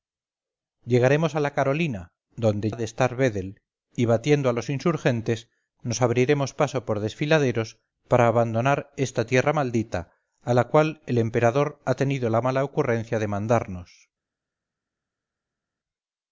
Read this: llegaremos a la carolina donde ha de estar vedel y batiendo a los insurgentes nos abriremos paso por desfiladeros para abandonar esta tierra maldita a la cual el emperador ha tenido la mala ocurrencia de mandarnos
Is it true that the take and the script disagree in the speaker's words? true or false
false